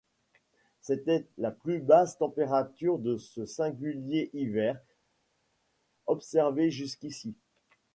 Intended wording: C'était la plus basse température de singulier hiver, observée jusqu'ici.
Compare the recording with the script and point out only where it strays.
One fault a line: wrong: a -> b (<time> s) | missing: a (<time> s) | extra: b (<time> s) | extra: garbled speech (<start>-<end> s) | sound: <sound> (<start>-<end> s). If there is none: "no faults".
extra: ce (3.2 s)